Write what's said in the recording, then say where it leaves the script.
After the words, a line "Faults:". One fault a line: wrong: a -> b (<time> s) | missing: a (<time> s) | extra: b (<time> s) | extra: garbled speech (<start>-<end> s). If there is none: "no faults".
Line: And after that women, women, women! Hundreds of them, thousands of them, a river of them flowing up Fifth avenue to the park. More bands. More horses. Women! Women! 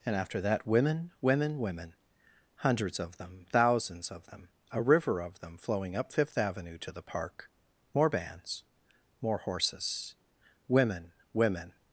And after that women, women, women! Hundreds of them, thousands of them, a river of them flowing up Fifth avenue to the park. More bands. More horses. Women! Women!
Faults:
no faults